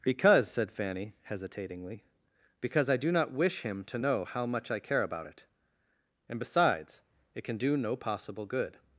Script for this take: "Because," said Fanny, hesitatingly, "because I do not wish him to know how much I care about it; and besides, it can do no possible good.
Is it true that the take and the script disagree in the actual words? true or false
false